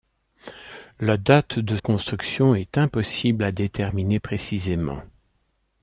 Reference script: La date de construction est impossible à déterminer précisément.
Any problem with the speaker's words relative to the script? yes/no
no